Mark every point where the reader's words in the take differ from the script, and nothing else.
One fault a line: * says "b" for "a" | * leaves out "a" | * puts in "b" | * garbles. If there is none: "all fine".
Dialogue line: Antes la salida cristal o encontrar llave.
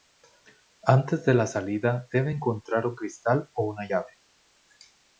* puts in "de"
* puts in "debe encontrar un"
* says "una" for "encontrar"